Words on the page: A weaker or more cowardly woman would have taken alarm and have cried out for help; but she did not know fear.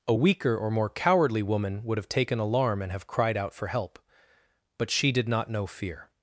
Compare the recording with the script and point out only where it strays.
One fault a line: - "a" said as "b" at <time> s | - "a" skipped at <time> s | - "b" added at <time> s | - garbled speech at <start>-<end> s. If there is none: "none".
none